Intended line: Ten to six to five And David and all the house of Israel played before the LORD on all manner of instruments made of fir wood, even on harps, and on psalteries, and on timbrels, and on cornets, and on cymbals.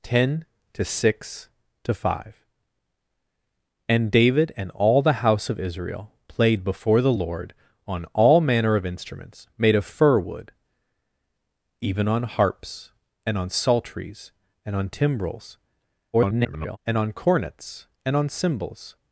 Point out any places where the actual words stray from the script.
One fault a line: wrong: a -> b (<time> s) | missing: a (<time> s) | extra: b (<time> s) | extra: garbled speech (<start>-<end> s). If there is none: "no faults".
extra: garbled speech (16.1-16.8 s)